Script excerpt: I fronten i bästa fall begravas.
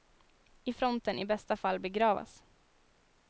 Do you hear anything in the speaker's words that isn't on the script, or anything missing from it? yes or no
no